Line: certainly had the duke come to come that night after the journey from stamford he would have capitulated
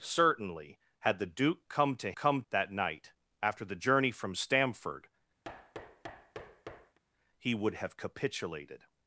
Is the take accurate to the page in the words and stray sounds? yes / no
no